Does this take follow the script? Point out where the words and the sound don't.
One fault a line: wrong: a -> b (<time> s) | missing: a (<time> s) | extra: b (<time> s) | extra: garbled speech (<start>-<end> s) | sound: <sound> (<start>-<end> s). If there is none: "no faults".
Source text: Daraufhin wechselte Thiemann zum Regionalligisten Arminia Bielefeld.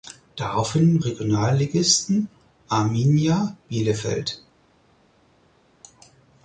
missing: wechselte Thiemann zum (1.0 s)